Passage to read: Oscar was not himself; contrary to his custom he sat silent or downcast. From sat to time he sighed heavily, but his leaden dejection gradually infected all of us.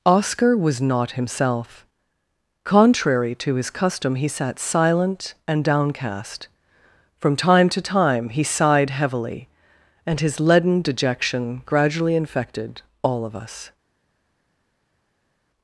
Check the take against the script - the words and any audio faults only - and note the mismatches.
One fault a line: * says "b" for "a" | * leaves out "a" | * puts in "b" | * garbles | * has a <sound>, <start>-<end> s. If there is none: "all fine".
* says "and" for "or"
* says "time" for "sat"
* says "and" for "but"